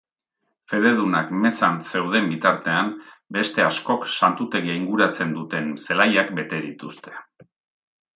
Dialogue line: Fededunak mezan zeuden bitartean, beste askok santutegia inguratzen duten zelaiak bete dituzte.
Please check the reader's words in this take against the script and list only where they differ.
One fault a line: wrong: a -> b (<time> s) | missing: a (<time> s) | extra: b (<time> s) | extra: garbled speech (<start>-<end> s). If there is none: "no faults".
no faults